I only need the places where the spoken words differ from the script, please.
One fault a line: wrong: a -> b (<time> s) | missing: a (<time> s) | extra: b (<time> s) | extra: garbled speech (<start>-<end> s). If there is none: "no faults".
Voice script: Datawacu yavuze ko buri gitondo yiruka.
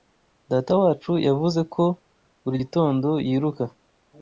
no faults